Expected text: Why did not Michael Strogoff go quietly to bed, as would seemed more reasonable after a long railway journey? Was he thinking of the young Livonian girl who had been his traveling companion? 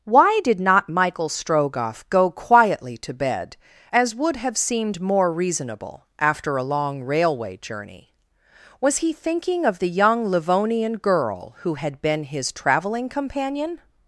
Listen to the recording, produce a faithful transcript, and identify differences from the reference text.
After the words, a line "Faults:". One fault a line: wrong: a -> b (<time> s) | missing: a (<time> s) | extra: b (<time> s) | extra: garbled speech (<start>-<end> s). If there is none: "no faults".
Why did not Michael Strogoff go quietly to bed, as would have seemed more reasonable after a long railway journey? Was he thinking of the young Livonian girl who had been his traveling companion?
Faults:
extra: have (4.4 s)